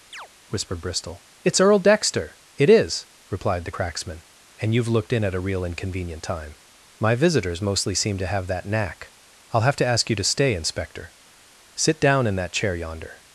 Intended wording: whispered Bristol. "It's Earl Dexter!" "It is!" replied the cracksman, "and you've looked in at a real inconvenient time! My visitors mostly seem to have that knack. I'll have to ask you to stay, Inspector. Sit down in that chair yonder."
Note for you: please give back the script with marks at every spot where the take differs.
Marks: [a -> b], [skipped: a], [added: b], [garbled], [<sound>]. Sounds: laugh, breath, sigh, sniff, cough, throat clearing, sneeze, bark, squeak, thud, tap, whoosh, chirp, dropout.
[chirp] whispered Bristol. "It's Earl Dexter!" "It is!" replied the cracksman, "and you've looked in at a real inconvenient time! My visitors mostly seem to have that knack. I'll have to ask you to stay, Inspector. Sit down in that chair yonder."